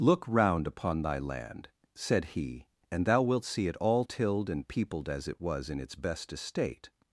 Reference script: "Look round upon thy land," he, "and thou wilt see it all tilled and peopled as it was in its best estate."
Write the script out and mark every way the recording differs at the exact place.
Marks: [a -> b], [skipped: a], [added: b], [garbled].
"Look round upon thy land," [added: said] he, "and thou wilt see it all tilled and peopled as it was in its best estate."